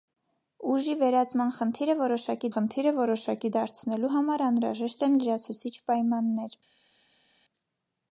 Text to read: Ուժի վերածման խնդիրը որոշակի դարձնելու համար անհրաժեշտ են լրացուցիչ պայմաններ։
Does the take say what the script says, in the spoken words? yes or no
no